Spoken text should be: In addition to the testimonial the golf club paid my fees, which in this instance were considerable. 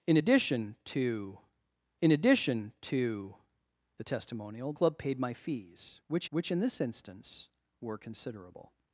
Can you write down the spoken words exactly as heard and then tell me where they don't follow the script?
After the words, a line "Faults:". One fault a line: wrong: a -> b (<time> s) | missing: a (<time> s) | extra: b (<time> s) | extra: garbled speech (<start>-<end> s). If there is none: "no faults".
In addition to in addition to the testimonial club paid my fees, which which in this instance were considerable.
Faults:
wrong: the testimonial -> in addition to (2.0 s)
wrong: golf -> testimonial (4.0 s)
extra: which (6.3 s)